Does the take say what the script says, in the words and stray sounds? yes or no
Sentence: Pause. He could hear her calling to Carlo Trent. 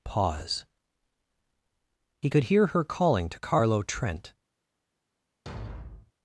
no